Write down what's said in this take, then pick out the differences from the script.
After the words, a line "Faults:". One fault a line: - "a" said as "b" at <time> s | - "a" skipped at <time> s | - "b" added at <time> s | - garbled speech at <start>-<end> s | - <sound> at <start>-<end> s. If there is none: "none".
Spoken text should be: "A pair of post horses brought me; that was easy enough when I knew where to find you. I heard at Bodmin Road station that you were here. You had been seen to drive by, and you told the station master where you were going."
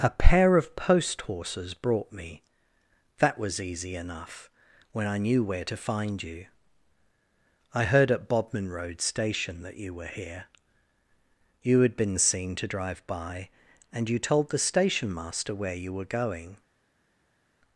"A pair of post horses brought me; that was easy enough when I knew where to find you. I heard at Bodmin Road station that you were here. You had been seen to drive by, and you told the station master where you were going."
Faults:
none